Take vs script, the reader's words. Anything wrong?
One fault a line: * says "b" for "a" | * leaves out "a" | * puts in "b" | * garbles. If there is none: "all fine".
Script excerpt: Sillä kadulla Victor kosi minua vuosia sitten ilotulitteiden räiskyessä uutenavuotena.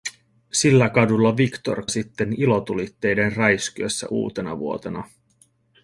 * leaves out "kosi minua vuosia"